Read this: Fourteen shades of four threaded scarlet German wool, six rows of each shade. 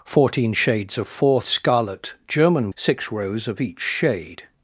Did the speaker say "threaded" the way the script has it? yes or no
no